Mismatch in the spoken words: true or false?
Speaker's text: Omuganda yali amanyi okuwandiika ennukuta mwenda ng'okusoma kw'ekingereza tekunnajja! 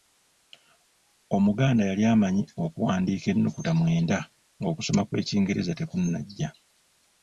false